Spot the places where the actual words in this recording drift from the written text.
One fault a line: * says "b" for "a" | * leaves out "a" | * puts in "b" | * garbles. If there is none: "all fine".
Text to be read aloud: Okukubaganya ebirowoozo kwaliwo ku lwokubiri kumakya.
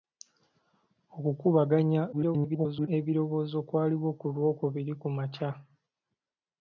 * garbles